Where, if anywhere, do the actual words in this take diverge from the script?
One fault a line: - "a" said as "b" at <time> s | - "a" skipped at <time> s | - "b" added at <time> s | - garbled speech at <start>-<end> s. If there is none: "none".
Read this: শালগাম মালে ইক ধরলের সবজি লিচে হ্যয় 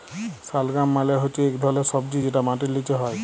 - "হচ্যে" added at 1.2 s
- "যেটা মাটির" added at 2.2 s